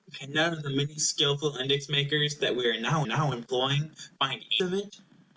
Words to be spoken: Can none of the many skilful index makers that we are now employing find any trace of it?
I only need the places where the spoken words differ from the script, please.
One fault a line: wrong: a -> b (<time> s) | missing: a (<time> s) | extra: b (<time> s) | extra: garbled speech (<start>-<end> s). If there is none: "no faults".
extra: now (3.0 s)
missing: any trace (4.4 s)